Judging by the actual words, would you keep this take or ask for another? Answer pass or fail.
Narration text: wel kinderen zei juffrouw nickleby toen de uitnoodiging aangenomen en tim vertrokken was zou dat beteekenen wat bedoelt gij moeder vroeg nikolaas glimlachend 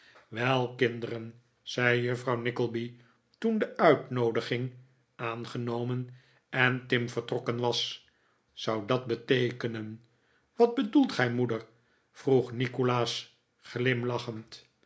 pass